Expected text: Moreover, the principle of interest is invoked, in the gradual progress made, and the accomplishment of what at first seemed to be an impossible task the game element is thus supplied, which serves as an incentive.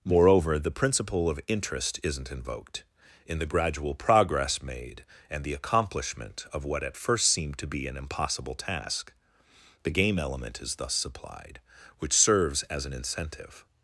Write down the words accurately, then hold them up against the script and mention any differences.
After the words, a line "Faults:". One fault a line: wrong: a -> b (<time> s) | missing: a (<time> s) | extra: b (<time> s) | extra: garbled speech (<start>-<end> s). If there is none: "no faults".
Moreover, the principle of interest isn't invoked, in the gradual progress made, and the accomplishment of what at first seemed to be an impossible task the game element is thus supplied, which serves as an incentive.
Faults:
wrong: is -> isn't (2.0 s)